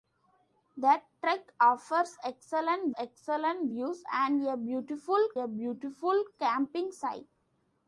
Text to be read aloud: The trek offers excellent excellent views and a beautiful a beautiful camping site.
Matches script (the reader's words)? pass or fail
pass